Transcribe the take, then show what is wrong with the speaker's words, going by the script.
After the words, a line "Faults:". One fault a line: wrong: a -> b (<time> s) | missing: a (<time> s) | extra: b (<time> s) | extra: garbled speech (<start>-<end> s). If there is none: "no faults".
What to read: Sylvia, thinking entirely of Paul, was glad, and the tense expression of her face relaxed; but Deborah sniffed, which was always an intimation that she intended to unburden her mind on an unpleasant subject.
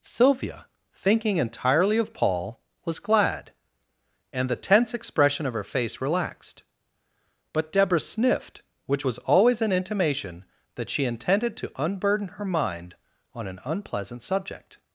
Sylvia, thinking entirely of Paul, was glad, and the tense expression of her face relaxed; but Deborah sniffed, which was always an intimation that she intended to unburden her mind on an unpleasant subject.
Faults:
no faults